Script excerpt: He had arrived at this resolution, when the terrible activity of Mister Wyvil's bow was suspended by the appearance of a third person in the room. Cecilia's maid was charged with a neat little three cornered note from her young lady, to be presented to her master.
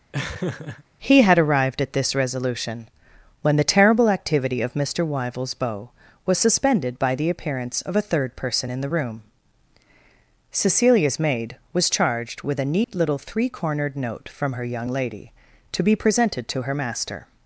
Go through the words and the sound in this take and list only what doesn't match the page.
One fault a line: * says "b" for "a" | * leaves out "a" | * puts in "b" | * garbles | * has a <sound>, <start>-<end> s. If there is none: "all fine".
* has a laugh, 0.1-0.8 s
* has a dropout, 12.8-12.9 s